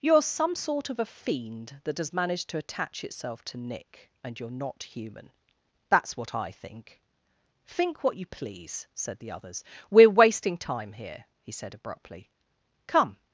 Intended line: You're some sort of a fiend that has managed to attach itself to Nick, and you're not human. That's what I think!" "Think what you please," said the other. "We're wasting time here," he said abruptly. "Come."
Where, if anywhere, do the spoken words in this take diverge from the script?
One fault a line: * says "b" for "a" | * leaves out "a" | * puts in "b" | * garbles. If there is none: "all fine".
* says "others" for "other"